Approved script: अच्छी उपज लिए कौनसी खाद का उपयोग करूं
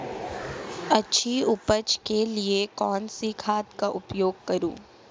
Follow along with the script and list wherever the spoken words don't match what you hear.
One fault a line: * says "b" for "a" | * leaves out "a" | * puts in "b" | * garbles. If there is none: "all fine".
* puts in "के"